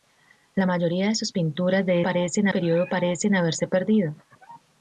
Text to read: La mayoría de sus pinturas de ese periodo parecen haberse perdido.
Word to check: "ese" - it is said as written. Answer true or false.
false